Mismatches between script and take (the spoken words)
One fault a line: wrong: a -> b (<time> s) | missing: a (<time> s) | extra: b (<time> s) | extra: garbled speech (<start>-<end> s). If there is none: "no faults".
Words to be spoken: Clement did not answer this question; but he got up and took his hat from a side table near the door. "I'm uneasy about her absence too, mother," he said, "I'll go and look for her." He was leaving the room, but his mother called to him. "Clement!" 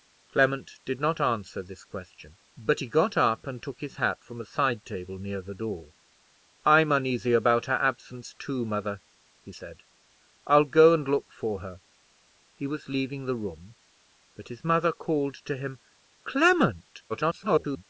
extra: garbled speech (17.1-17.8 s)